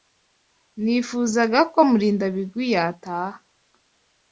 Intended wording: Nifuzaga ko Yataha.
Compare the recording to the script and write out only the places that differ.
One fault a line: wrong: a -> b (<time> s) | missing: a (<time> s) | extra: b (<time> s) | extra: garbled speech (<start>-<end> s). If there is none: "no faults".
extra: Murindabigwi (1.9 s)